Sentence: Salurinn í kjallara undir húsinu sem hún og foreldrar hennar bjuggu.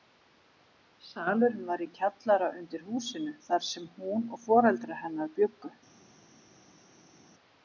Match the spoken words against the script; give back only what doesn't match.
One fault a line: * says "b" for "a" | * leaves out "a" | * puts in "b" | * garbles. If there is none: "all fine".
* puts in "var"
* puts in "þar"